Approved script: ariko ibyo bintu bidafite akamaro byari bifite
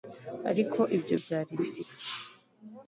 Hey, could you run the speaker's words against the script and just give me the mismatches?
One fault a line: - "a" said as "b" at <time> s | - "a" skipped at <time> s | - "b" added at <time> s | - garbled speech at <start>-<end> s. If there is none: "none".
- "bintu bidafite akamaro" skipped at 1.1 s